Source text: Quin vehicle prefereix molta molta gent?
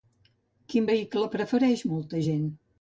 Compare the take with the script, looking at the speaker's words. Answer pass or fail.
fail